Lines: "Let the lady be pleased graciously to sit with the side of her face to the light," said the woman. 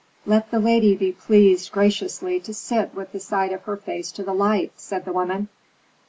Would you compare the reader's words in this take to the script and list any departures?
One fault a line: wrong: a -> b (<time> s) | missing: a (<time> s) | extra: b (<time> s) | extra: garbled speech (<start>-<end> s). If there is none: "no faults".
no faults